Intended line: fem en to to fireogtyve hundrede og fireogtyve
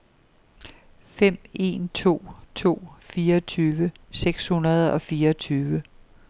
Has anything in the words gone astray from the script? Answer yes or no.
yes